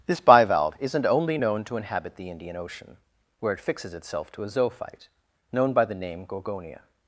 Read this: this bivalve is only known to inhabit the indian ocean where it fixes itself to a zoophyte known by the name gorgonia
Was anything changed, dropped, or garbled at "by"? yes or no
no